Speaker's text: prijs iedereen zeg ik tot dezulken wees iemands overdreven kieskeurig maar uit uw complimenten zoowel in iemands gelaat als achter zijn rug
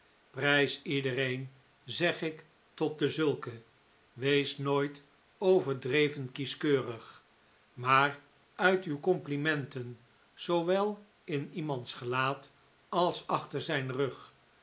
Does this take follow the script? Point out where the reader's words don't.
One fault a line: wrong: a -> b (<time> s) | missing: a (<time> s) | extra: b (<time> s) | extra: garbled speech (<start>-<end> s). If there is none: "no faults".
wrong: iemands -> nooit (4.6 s)